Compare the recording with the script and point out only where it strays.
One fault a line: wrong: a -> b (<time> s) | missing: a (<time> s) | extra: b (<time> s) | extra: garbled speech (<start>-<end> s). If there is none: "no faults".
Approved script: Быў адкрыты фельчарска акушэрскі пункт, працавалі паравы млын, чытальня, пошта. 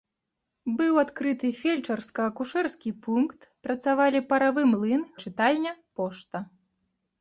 no faults